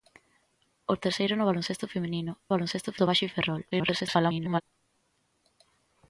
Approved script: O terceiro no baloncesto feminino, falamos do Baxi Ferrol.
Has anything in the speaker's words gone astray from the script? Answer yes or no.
yes